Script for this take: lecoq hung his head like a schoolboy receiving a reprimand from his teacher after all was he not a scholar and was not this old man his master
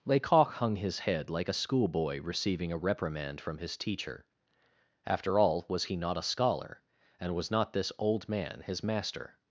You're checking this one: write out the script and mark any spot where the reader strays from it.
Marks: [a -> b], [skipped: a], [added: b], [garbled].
lecoq hung his head like a schoolboy receiving a reprimand from his teacher after all was he not a scholar and was not this old man his master